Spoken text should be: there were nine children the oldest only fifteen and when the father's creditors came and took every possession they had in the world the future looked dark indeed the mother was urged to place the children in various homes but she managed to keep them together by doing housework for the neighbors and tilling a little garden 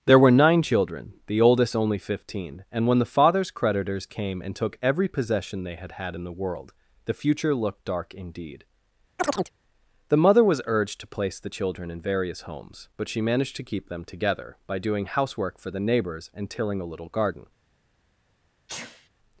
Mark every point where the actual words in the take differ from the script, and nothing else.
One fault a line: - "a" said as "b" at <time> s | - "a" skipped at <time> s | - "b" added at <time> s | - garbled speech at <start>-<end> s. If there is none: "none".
- "had" added at 5.9 s